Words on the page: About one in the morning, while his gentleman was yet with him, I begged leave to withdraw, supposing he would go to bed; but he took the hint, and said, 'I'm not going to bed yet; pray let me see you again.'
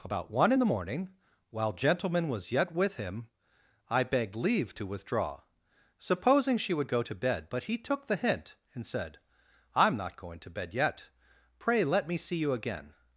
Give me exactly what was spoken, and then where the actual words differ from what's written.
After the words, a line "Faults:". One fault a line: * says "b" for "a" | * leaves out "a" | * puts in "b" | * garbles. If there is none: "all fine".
About one in the morning, while gentleman was yet with him, I begged leave to withdraw, supposing she would go to bed; but he took the hint, and said, 'I'm not going to bed yet; pray let me see you again.'
Faults:
* leaves out "his"
* says "she" for "he"